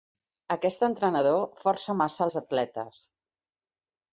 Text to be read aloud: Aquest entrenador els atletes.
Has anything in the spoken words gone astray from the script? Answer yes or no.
yes